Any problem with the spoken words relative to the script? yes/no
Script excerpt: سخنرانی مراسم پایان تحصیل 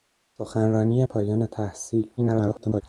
yes